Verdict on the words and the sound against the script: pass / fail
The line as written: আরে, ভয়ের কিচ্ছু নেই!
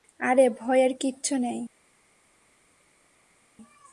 pass